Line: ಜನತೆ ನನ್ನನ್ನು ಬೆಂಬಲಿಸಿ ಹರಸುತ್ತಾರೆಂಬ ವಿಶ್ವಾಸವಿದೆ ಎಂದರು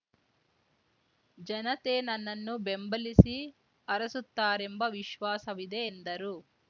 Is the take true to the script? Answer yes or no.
yes